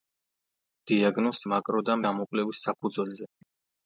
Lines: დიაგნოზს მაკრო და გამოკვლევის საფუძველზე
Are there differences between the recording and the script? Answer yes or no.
no